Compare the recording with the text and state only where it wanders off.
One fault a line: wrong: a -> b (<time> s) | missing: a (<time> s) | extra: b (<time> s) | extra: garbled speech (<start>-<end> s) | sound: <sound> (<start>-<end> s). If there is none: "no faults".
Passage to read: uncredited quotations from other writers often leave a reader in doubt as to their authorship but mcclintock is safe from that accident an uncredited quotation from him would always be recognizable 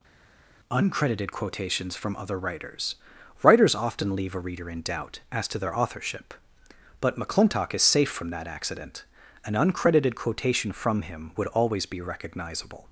extra: writers (3.4 s)